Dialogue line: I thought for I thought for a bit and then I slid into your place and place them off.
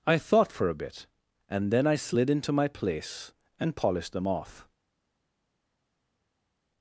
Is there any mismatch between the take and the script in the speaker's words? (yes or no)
yes